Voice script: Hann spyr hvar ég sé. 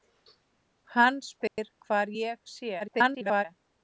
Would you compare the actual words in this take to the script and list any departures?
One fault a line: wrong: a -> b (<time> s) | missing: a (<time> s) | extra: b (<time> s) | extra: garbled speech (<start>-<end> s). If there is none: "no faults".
extra: garbled speech (2.8-3.5 s)